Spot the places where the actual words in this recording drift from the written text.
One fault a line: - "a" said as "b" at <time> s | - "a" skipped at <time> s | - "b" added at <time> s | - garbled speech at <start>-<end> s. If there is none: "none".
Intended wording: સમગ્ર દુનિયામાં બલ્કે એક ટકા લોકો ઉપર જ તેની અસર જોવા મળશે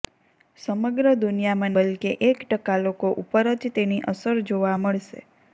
none